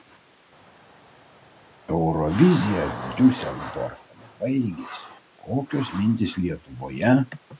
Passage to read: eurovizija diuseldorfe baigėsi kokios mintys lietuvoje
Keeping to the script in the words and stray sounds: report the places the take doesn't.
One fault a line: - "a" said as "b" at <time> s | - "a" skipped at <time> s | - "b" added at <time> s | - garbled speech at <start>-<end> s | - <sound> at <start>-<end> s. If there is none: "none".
none